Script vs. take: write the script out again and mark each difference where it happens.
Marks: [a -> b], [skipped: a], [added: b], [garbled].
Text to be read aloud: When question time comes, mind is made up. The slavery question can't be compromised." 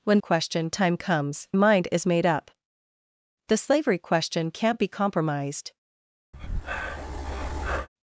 When question time comes, mind is made up. The slavery question can't be compromised."